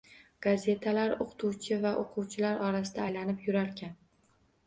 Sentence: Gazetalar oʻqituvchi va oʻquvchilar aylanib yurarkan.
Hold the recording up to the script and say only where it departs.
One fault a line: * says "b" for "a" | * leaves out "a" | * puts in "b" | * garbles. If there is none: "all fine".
* puts in "orasida"